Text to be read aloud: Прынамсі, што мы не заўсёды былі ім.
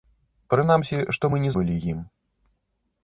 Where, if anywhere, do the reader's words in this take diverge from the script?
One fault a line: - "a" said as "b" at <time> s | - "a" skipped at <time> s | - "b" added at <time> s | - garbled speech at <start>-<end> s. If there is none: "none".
- "заўсёды" skipped at 1.5 s